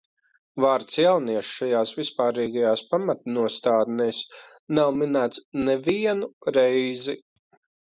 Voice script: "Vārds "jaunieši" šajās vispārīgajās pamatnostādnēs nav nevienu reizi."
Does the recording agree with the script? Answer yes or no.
no